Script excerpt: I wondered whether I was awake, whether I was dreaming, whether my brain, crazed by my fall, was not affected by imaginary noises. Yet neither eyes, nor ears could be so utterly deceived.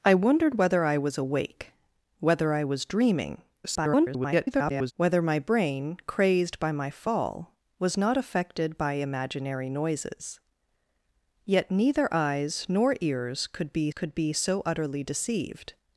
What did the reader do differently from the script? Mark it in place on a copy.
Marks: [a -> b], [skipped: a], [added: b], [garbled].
I wondered whether I was awake, whether I was dreaming, [garbled] whether my brain, crazed by my fall, was not affected by imaginary noises. Yet neither eyes, nor ears could be [added: could be] so utterly deceived.